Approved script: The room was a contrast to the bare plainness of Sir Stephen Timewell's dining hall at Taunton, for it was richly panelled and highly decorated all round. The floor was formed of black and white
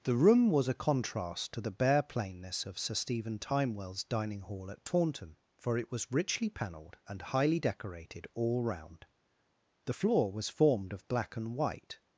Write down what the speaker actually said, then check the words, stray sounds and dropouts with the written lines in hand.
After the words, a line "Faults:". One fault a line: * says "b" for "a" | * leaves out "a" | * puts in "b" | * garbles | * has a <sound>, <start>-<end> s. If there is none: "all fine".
The room was a contrast to the bare plainness of Sir Stephen Timewell's dining hall at Taunton, for it was richly panelled and highly decorated all round. The floor was formed of black and white
Faults:
all fine